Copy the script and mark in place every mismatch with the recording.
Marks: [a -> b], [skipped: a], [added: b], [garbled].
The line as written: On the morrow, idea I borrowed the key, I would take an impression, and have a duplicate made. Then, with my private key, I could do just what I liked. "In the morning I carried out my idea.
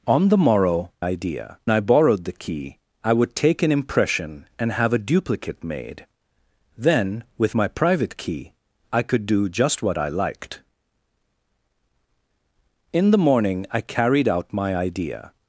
On the morrow, idea I borrowed the key, I would take an impression, and have a duplicate made. Then, with my private key, I could do just what I liked. "In the morning I carried out my idea.